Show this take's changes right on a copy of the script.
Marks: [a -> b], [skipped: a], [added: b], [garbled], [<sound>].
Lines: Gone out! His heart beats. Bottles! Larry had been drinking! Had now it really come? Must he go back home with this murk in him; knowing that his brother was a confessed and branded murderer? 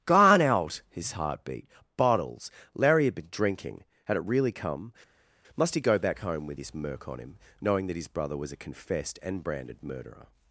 Gone out! His heart [beats. -> beat] Bottles! Larry had been drinking! Had [skipped: now] it really come? Must he go back home with this murk [in -> on] him; knowing that his brother was a confessed and branded murderer?